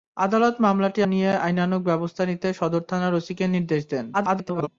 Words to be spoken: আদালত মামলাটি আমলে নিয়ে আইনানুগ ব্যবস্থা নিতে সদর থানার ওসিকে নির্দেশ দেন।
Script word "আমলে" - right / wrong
wrong